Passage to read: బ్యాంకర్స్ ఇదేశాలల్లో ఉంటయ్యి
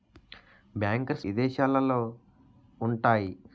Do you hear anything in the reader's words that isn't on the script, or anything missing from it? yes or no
no